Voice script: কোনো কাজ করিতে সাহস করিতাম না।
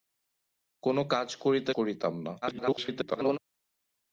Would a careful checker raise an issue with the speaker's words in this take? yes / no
yes